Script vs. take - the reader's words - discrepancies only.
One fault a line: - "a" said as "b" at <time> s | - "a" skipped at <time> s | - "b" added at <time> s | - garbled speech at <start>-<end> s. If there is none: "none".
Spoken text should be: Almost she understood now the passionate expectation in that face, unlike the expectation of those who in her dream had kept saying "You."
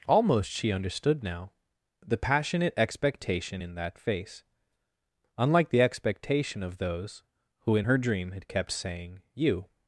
none